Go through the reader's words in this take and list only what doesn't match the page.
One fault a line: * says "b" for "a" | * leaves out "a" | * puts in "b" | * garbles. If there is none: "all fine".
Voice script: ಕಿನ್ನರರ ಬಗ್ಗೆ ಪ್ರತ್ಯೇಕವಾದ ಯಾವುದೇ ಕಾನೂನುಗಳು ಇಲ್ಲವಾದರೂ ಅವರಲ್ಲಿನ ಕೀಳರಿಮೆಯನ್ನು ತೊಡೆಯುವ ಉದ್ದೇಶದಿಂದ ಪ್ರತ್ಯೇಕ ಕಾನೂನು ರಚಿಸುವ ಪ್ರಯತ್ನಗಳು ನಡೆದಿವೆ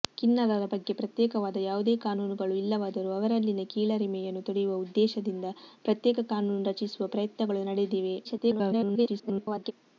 * garbles